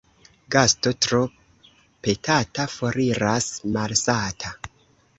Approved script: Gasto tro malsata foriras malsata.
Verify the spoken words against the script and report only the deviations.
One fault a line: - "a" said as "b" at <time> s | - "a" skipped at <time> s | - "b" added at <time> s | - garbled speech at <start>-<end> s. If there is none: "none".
- "malsata" said as "petata" at 2.1 s